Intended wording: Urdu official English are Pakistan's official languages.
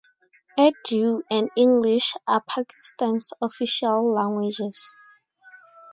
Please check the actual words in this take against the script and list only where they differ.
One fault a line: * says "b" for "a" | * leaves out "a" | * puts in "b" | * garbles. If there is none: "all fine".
* says "and" for "official"